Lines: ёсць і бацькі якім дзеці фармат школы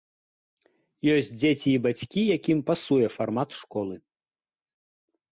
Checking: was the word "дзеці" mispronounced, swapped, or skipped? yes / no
yes